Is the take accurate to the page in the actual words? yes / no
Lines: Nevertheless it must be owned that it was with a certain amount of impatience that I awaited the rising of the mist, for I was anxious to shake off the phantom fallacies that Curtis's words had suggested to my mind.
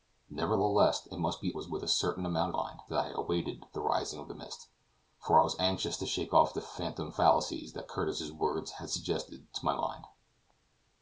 no